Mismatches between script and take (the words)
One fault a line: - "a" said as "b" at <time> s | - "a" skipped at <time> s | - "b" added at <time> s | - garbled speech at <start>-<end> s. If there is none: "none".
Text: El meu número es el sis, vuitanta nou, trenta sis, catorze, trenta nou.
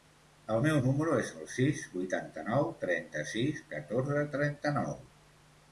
none